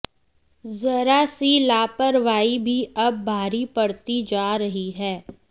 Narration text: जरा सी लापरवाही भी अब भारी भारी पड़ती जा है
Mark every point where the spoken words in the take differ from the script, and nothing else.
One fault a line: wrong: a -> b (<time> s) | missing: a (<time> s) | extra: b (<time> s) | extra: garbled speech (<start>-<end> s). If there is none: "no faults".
missing: भारी (3.6 s)
extra: रही (4.5 s)